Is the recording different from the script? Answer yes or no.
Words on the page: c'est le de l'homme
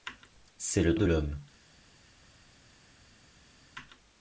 no